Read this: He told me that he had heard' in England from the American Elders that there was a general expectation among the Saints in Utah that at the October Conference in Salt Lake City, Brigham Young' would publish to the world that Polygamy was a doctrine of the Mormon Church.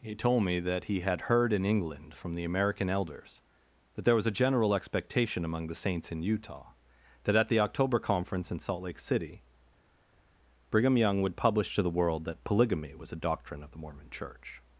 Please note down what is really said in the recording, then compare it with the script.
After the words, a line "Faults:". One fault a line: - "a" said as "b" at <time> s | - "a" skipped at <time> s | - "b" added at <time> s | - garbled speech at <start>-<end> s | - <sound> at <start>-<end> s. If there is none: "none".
He told me that he had heard' in England from the American Elders that there was a general expectation among the Saints in Utah that at the October Conference in Salt Lake City, Brigham Young' would publish to the world that Polygamy was a doctrine of the Mormon Church.
Faults:
none